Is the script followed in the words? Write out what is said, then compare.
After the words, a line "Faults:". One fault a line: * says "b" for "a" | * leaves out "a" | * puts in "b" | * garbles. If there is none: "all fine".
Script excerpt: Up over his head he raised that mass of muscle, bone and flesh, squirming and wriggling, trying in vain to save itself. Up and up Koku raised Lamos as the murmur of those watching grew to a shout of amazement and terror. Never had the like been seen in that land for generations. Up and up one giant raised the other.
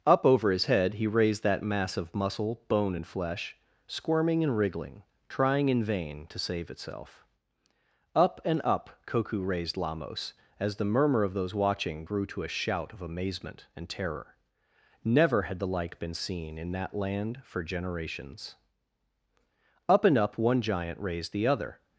Up over his head he raised that mass of muscle, bone and flesh, squirming and wriggling, trying in vain to save itself. Up and up Koku raised Lamos as the murmur of those watching grew to a shout of amazement and terror. Never had the like been seen in that land for generations. Up and up one giant raised the other.
Faults:
all fine